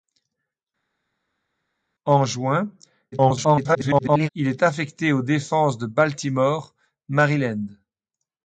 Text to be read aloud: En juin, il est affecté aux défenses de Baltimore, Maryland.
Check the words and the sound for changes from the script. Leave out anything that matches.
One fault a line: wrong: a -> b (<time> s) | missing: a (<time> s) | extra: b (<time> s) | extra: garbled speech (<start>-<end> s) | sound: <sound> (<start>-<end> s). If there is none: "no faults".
extra: garbled speech (3.1-4.3 s)